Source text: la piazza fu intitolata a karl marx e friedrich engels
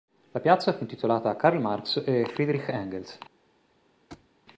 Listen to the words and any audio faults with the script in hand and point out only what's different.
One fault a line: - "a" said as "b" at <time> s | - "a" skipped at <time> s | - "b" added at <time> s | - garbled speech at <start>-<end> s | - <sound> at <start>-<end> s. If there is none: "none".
- thud at 4.1-4.3 s